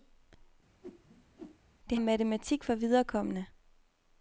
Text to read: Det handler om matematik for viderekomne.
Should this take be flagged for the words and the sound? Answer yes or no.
yes